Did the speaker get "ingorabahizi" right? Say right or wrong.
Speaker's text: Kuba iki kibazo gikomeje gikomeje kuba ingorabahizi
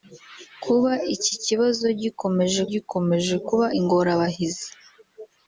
right